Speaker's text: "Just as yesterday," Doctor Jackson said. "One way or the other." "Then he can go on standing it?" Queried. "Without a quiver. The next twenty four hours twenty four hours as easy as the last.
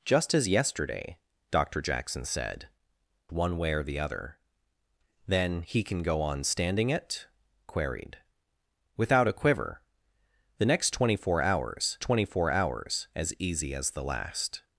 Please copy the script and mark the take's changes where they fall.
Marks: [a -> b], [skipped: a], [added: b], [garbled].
"Just as yesterday," Doctor Jackson said. "One way or the other." "Then he can go on standing it?" Queried. "Without a quiver. The next twenty four hours twenty four hours as easy as the last.